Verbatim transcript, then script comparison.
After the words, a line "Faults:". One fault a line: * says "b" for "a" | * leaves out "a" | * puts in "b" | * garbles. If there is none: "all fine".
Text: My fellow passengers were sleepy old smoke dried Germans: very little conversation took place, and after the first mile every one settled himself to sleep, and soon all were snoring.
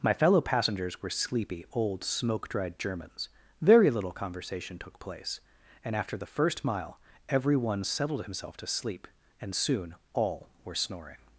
My fellow passengers were sleepy old smoke dried Germans: very little conversation took place, and after the first mile every one settled himself to sleep, and soon all were snoring.
Faults:
all fine